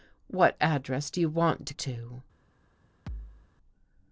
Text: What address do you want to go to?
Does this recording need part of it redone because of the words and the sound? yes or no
yes